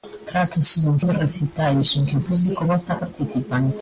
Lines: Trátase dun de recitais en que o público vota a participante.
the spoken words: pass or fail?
pass